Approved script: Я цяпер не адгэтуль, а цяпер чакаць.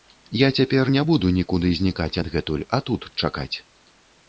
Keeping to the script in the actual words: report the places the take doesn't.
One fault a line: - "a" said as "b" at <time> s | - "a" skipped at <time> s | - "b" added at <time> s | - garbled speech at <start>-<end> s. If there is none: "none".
- "буду нікуды знікаць" added at 1.1 s
- "цяпер" said as "тут" at 2.9 s